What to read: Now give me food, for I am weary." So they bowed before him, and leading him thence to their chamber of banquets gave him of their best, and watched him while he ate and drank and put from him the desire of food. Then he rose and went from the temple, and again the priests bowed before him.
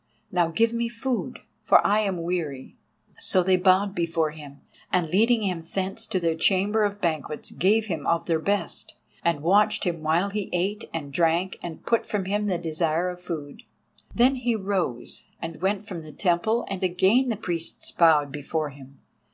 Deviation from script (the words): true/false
false